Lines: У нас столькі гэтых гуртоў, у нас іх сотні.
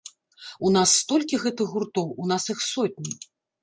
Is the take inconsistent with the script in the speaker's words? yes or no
no